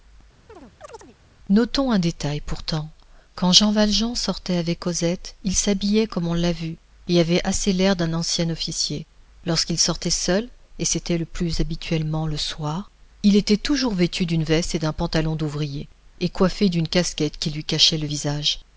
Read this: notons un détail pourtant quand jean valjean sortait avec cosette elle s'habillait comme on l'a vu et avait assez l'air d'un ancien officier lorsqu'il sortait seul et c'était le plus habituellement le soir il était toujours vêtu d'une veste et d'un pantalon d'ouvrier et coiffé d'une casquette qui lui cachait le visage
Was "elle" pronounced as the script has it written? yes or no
no